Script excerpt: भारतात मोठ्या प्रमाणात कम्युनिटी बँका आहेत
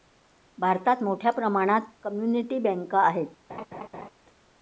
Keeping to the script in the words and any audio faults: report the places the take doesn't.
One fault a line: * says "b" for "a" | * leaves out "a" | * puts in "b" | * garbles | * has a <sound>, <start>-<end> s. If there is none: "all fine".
* has a laugh, 3.5-4.1 s